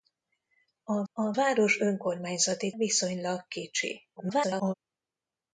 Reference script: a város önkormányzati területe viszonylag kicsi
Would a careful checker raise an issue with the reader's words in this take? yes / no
yes